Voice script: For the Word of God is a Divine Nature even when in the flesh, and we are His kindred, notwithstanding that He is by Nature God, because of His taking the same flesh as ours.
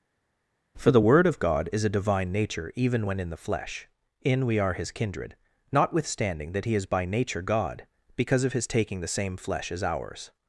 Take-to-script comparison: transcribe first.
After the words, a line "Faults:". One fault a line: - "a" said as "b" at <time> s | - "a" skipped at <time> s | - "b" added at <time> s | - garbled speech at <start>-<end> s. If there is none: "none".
For the Word of God is a Divine Nature even when in the flesh, in we are His kindred, notwithstanding that He is by Nature God, because of His taking the same flesh as ours.
Faults:
- "and" said as "in" at 4.2 s